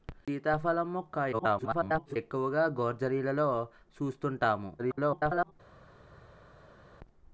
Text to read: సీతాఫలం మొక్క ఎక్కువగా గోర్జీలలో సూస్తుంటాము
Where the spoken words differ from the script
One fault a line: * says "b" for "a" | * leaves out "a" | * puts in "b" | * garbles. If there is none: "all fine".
* garbles
* garbles